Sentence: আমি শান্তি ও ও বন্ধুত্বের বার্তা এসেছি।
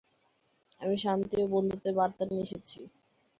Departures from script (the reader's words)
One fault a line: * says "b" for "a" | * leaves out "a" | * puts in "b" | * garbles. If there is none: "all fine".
* leaves out "ও"
* puts in "নিয়ে"